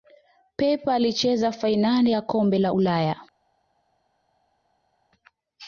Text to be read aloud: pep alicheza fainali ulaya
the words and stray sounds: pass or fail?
fail